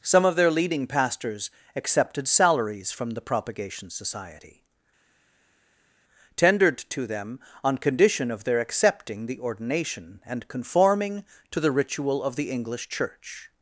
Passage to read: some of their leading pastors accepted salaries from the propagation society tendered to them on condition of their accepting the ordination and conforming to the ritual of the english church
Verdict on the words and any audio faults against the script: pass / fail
pass